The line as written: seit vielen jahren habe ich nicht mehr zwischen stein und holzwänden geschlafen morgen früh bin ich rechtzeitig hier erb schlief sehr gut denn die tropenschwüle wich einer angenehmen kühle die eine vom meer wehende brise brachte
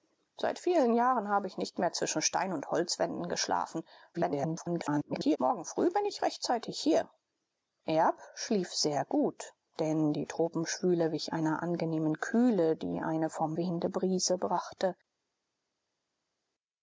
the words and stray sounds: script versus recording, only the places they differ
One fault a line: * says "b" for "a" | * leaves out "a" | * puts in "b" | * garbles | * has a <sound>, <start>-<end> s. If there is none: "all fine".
* garbles
* leaves out "meer"